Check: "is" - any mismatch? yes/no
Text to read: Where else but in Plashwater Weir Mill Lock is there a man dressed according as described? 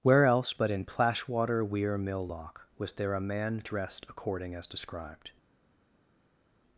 yes